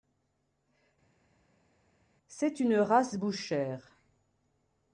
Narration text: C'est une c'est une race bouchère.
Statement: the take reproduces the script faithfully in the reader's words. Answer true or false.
false